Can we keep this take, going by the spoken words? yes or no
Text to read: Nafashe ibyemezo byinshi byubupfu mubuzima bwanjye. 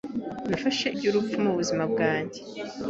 no